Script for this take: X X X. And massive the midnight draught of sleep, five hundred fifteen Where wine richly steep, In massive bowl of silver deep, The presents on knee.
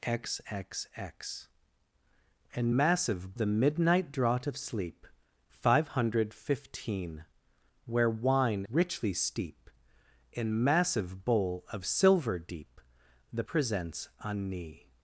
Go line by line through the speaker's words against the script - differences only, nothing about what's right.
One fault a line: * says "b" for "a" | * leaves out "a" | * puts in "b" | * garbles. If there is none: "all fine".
all fine